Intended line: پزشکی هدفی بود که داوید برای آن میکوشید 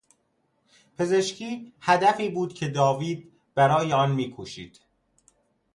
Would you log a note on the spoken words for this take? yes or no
no